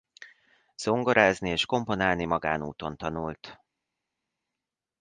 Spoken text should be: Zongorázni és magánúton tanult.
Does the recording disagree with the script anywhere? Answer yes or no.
yes